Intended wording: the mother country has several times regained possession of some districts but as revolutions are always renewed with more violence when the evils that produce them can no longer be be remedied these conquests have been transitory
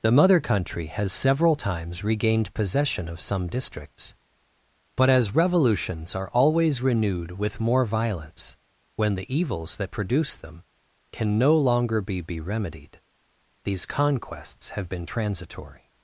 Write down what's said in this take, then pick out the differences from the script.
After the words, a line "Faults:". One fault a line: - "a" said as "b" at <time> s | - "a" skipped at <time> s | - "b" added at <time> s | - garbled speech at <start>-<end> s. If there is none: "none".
the mother country has several times regained possession of some districts but as revolutions are always renewed with more violence when the evils that produce them can no longer be be remedied these conquests have been transitory
Faults:
none